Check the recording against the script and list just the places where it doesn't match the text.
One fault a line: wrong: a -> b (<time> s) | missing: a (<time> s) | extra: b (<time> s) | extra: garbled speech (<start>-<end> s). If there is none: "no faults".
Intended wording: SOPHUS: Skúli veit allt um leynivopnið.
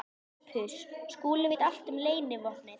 no faults